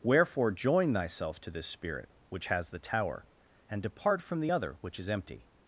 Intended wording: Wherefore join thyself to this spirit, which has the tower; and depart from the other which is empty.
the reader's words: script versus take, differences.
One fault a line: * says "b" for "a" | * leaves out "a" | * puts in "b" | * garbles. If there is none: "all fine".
all fine